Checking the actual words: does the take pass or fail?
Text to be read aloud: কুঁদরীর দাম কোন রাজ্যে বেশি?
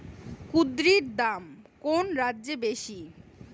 pass